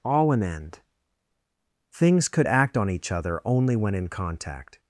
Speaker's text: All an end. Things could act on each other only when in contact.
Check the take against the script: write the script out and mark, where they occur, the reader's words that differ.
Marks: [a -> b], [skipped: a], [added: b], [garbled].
All an end. Things could act on each other only when in contact.